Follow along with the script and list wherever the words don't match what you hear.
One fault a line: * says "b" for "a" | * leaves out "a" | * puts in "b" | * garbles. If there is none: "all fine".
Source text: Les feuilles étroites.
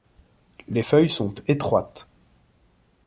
* puts in "sont"